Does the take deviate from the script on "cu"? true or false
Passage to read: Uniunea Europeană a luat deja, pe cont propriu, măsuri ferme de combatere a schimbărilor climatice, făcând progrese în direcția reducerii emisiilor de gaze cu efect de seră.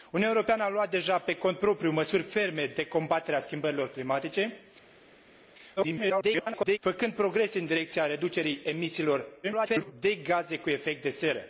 false